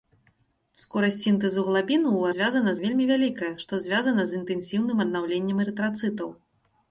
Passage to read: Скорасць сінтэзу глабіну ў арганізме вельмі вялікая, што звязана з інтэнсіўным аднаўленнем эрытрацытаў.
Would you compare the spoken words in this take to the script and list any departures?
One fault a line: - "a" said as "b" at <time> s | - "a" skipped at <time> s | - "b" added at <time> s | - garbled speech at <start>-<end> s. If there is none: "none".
- "арганізме" said as "звязана" at 2.4 s